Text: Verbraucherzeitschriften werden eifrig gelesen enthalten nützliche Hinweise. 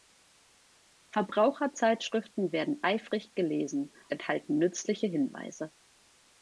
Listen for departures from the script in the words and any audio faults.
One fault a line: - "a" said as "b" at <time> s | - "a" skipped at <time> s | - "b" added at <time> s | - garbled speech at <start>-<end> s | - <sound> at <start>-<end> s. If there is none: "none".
none